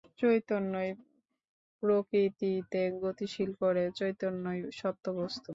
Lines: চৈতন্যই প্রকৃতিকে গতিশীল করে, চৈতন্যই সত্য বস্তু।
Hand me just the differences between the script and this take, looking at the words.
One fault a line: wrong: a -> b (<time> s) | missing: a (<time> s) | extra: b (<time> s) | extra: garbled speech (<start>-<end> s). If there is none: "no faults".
no faults